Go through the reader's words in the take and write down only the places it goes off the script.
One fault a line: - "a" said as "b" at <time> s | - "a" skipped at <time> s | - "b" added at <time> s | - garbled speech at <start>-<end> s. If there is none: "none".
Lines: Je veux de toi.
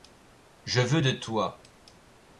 none